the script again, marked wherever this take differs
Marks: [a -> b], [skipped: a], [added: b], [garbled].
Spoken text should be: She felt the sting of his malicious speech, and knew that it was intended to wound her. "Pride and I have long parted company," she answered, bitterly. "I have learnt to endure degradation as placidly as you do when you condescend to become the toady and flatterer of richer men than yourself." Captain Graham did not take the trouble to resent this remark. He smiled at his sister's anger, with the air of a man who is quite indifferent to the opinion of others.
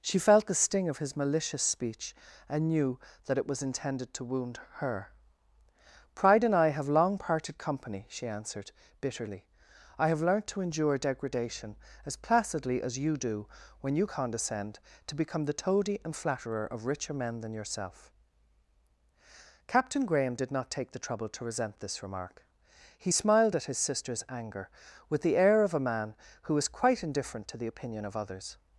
She felt the sting of his malicious speech, and knew that it was intended to wound her. "Pride and I have long parted company," she answered, bitterly. "I have learnt to endure degradation as placidly as you do when you condescend to become the toady and flatterer of richer men than yourself." Captain Graham did not take the trouble to resent this remark. He smiled at his sister's anger, with the air of a man who is quite indifferent to the opinion of others.